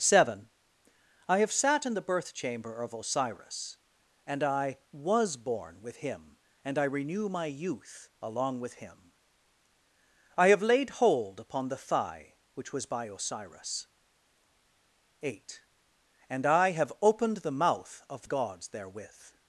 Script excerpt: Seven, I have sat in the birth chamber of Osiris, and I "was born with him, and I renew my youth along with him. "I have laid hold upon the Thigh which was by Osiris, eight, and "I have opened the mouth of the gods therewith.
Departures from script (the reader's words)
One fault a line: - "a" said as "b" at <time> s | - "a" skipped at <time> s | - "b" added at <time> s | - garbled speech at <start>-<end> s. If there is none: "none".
- "the" skipped at 18.2 s